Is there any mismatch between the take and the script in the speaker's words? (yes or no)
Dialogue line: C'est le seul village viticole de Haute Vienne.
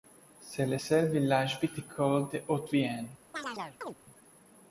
no